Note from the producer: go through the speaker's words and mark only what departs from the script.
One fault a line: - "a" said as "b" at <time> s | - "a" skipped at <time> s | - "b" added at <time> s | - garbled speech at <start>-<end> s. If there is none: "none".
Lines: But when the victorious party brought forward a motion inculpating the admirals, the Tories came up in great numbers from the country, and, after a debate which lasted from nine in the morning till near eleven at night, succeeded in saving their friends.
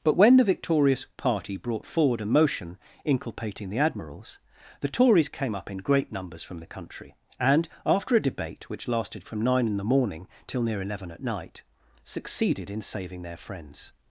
none